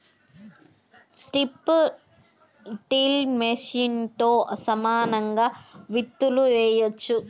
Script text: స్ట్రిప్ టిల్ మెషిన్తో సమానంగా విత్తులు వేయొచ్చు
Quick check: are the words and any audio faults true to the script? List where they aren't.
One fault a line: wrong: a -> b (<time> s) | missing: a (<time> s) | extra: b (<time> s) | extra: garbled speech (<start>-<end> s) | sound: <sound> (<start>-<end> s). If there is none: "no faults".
no faults